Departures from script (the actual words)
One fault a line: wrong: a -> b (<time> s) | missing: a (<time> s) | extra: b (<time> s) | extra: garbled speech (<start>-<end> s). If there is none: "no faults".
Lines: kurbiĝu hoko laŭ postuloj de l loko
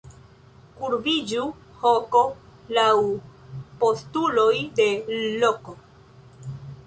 no faults